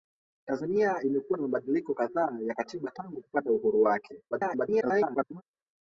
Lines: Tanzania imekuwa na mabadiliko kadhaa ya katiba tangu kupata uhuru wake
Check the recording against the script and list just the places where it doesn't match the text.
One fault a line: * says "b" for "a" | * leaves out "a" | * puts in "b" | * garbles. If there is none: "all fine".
* garbles